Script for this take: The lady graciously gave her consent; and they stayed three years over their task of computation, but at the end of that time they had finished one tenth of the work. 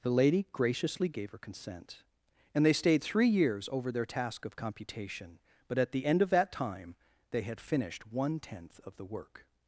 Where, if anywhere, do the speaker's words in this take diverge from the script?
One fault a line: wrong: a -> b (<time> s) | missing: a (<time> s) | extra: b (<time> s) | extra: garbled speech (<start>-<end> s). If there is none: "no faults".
no faults